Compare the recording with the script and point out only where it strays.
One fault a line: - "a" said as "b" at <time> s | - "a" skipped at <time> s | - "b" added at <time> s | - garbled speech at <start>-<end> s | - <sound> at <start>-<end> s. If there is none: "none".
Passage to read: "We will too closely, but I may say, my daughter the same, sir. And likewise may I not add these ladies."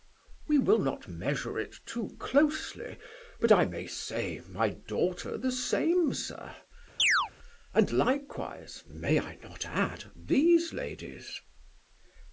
- "not measure it" added at 0.8 s
- chirp at 7.0-7.3 s